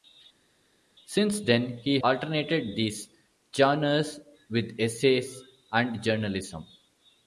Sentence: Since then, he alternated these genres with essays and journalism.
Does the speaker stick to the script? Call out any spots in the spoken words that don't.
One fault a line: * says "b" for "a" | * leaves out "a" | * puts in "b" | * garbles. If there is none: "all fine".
all fine